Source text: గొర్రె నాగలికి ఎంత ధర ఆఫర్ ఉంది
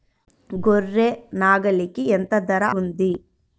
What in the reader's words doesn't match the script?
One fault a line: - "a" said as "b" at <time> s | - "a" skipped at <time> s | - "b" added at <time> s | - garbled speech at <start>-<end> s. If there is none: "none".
- "ఆఫర్" skipped at 2.6 s